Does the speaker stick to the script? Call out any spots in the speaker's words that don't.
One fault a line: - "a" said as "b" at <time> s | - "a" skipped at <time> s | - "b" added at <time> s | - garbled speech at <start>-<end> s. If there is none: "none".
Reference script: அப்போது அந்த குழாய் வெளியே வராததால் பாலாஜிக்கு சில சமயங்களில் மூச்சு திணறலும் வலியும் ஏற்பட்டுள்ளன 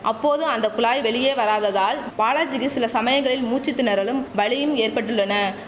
none